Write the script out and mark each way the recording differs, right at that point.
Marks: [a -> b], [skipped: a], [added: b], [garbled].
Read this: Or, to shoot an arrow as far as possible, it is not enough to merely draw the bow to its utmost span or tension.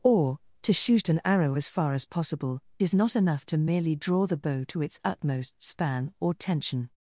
Or, to shoot an arrow as far as possible, [skipped: it] is not enough to merely draw the bow to its utmost span or tension.